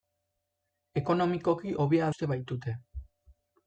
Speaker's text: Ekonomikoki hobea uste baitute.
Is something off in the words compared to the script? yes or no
no